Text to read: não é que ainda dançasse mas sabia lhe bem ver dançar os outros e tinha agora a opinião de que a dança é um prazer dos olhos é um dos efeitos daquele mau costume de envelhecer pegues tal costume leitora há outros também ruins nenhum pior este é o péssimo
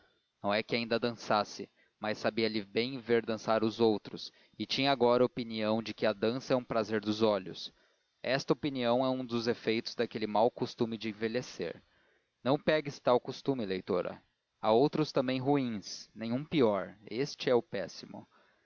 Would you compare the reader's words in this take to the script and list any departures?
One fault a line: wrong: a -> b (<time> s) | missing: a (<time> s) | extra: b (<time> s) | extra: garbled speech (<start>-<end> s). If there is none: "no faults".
extra: esta opinião (8.2 s)
extra: não (12.4 s)